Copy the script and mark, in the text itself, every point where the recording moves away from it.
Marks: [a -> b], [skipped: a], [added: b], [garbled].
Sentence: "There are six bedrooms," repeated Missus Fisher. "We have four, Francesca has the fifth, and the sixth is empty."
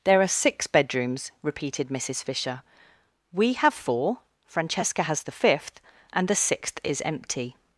"There are six bedrooms," repeated Missus Fisher. "We have four, Francesca has the fifth, and the sixth is empty."